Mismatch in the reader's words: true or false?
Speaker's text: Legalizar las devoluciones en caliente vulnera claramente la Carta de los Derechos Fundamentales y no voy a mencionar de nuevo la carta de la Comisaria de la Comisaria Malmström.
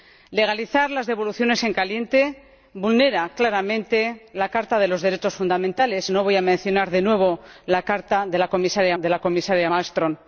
false